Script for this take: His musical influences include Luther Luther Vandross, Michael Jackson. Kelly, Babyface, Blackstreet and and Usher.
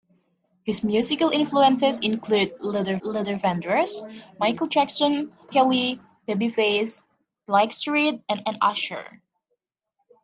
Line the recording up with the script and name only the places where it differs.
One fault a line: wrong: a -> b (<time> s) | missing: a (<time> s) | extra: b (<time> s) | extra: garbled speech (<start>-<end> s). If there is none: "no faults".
no faults